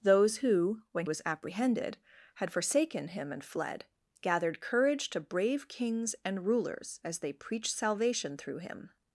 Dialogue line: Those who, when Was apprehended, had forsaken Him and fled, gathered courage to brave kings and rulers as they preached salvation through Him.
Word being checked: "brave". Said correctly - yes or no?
yes